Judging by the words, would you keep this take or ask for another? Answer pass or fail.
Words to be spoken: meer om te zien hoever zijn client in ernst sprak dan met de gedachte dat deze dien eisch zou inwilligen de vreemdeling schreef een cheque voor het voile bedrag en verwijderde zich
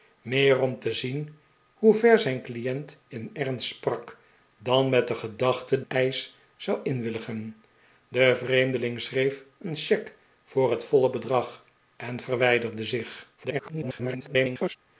fail